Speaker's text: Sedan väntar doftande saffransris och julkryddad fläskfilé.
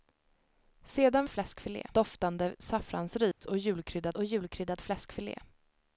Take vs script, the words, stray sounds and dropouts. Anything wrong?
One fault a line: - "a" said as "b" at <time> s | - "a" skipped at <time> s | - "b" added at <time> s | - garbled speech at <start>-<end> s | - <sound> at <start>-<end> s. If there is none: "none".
- "väntar" said as "fläskfilé" at 1.3 s
- dropout at 3.3-3.4 s
- "och julkryddad" added at 4.1 s